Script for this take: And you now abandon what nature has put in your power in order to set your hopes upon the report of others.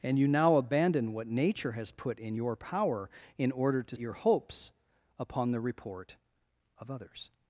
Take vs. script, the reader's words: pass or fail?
fail